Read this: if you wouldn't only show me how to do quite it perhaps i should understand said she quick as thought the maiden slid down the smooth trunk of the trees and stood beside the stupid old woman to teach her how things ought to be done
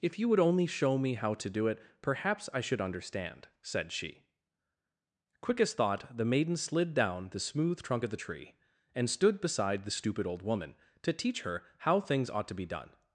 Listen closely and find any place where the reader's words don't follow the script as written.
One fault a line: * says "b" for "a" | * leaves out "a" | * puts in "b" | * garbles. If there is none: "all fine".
* says "would" for "wouldn't"
* leaves out "quite"
* says "tree" for "trees"